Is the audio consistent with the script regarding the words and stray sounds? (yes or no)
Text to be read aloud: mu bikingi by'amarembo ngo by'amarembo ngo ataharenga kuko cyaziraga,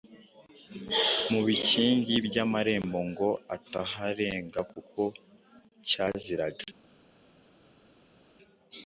no